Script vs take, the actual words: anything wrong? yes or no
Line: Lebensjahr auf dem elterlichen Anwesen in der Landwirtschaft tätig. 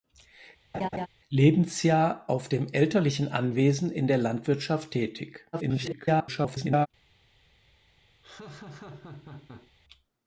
yes